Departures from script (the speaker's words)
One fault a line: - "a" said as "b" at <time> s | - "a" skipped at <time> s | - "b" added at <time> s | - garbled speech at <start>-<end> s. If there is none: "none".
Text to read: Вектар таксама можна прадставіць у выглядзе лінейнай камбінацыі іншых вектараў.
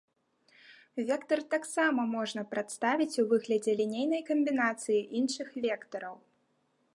none